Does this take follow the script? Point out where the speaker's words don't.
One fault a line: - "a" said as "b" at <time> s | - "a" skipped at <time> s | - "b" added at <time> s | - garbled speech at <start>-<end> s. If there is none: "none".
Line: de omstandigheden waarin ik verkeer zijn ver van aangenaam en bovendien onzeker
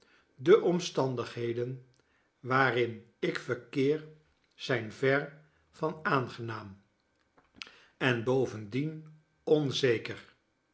none